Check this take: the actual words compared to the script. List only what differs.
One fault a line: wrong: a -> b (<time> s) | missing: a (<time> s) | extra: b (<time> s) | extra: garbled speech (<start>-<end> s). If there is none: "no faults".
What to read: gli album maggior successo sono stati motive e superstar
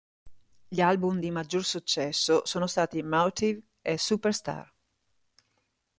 extra: di (1.2 s)